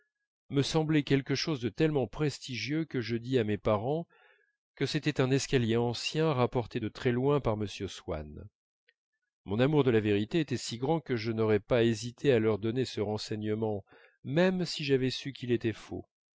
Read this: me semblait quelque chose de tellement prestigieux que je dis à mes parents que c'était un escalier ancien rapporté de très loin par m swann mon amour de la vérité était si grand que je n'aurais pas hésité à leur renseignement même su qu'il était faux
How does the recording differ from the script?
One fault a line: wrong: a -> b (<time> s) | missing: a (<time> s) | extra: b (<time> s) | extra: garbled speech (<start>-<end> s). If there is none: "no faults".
extra: donner ce (12.6 s)
extra: si j'avais (14.6 s)